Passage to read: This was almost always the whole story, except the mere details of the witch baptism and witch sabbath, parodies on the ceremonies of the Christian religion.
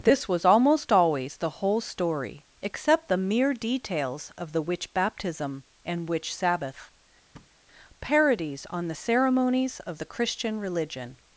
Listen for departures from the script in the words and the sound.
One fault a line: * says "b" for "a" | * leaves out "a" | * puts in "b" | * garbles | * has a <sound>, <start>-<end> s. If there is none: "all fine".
* has a thud, 7.3-7.6 s